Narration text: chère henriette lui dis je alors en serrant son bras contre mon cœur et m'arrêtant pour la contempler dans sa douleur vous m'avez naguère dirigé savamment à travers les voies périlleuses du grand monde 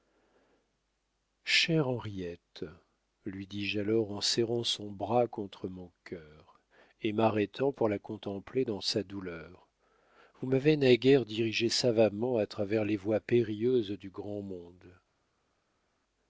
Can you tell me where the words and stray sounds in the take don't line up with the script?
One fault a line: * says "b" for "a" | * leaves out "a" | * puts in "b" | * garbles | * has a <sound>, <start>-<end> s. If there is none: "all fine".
all fine